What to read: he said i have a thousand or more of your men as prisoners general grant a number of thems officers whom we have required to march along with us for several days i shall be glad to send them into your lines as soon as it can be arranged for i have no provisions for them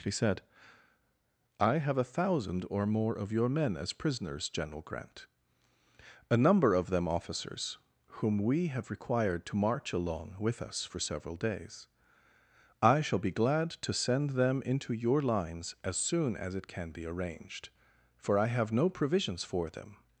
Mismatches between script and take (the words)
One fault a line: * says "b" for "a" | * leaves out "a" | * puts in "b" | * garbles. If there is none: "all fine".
* says "them" for "thems"